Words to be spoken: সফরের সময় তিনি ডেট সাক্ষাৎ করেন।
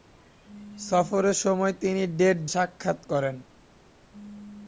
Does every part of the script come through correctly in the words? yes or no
yes